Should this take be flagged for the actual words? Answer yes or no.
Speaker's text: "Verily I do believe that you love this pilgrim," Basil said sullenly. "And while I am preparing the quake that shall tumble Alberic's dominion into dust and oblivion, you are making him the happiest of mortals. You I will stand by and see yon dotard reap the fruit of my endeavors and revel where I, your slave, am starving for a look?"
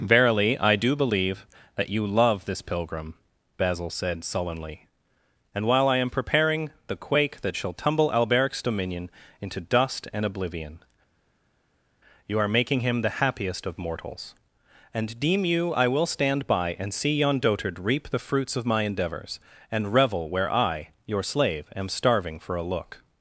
yes